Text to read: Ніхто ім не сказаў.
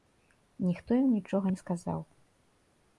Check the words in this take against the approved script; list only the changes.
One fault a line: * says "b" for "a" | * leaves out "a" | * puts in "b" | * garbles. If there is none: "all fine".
* puts in "нічога"